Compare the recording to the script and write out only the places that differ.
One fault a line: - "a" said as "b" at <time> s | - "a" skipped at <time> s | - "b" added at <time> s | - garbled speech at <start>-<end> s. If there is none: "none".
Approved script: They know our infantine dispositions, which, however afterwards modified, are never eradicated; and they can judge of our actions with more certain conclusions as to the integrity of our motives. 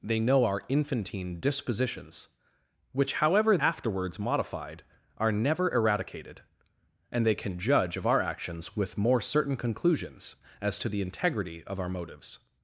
none